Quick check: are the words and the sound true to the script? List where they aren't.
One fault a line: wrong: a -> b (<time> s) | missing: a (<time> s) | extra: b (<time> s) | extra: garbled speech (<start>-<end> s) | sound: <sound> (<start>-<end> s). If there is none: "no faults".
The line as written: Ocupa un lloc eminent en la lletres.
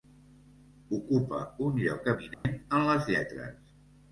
sound: dropout (2.3-2.4 s)
wrong: la -> les (2.9 s)